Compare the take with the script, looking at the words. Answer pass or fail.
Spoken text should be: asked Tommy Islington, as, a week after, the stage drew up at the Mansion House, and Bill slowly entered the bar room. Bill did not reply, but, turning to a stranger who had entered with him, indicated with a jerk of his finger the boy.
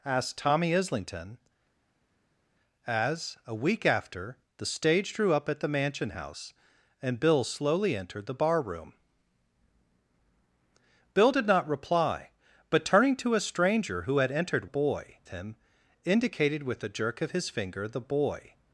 fail